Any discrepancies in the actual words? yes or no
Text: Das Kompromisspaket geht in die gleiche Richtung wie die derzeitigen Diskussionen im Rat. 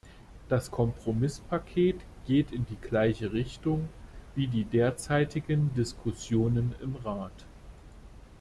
no